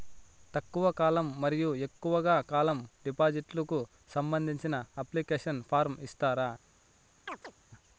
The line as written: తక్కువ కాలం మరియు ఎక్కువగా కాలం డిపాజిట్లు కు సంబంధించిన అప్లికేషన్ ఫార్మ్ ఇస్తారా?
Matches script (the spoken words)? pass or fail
pass